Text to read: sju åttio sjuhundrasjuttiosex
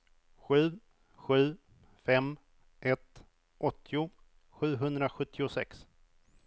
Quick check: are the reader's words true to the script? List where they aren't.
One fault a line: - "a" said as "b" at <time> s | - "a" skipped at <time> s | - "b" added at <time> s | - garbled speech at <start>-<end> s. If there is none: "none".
- "sju fem ett" added at 1.1 s